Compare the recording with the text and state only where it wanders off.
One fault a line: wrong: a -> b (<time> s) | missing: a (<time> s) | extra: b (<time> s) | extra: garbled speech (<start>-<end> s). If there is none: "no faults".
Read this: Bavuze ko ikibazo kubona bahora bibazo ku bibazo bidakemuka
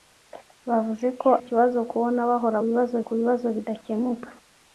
no faults